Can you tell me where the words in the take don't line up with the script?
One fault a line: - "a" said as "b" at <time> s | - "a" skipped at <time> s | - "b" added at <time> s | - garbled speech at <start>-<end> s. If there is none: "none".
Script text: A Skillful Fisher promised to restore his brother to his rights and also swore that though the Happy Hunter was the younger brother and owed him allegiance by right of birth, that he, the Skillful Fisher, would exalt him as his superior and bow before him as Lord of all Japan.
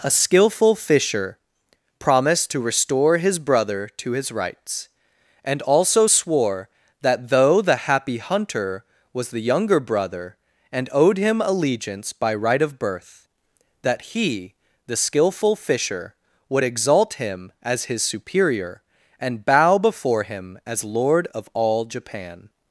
none